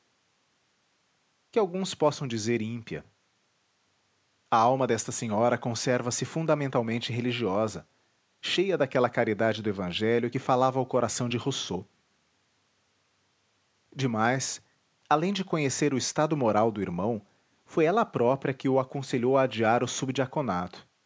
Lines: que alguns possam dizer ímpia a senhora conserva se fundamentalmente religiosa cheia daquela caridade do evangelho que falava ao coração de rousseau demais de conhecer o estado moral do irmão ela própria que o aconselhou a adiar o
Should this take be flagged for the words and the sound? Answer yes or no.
yes